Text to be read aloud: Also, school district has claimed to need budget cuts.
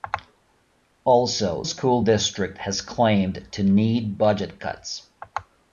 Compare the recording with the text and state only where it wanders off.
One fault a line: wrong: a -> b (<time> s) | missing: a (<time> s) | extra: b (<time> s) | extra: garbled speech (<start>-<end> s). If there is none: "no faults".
no faults